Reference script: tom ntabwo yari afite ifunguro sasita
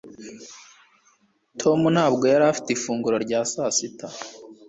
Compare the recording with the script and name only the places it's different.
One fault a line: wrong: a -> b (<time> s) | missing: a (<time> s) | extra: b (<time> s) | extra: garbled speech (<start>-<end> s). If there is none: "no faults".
extra: rya (3.2 s)